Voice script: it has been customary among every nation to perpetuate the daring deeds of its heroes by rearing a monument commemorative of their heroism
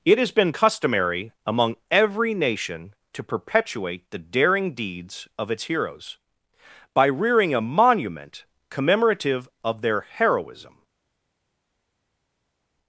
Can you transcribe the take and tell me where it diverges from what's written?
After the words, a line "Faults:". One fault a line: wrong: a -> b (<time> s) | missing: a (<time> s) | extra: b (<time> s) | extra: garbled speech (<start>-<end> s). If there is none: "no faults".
it has been customary among every nation to perpetuate the daring deeds of its heroes by rearing a monument commemorative of their heroism
Faults:
no faults